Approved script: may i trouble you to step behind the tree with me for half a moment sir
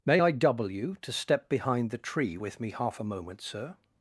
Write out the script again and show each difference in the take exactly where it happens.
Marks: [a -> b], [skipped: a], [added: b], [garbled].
may i [trouble -> double] you to step behind the tree with me [skipped: for] half a moment sir